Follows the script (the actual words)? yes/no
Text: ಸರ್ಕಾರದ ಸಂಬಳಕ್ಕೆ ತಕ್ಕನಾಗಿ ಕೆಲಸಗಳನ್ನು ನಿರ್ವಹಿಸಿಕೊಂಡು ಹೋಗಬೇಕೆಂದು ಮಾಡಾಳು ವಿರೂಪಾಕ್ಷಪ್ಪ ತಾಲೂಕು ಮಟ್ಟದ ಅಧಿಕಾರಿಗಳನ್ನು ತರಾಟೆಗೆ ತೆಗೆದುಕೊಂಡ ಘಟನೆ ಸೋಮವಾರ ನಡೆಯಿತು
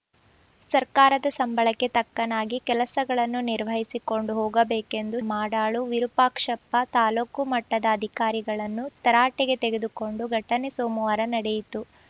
yes